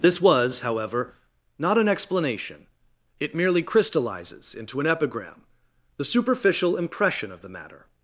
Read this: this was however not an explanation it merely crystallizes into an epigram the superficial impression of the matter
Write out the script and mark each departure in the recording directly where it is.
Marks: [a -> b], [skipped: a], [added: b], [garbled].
this was however not an explanation it merely crystallizes into an epigram the superficial impression of the matter